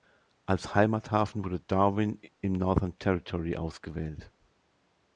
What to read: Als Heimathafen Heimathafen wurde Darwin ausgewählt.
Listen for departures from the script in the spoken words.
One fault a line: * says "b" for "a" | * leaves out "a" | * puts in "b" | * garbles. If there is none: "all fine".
* leaves out "Heimathafen"
* puts in "im Northern Territory"